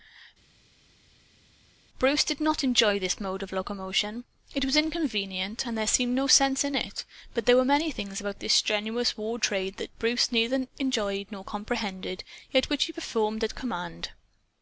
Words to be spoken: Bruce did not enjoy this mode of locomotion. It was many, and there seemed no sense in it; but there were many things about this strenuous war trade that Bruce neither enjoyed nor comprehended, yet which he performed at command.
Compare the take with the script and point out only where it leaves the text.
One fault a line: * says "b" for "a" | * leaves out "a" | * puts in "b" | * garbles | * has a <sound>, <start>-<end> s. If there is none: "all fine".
* says "inconvenient" for "many"